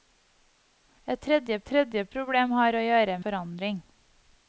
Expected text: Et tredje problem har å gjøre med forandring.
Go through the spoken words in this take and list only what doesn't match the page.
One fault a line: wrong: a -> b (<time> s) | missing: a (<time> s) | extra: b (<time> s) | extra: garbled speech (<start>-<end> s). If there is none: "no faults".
extra: tredje (1.7 s)
missing: med (3.2 s)